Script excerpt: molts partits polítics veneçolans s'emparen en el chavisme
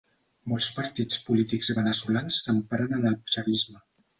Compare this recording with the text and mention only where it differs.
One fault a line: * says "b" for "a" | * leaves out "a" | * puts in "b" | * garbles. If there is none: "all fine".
all fine